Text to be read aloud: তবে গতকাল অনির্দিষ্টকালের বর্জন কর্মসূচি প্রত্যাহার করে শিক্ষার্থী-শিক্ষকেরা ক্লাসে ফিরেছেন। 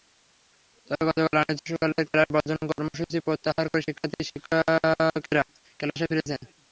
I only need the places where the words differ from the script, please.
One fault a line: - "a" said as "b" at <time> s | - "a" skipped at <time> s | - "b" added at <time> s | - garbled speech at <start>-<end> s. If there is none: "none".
- "ক্লাস" added at 2.1 s